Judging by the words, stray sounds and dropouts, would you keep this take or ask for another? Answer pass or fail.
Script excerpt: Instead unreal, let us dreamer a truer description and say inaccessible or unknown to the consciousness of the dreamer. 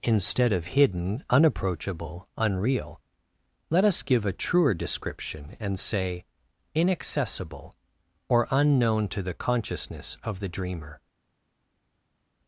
fail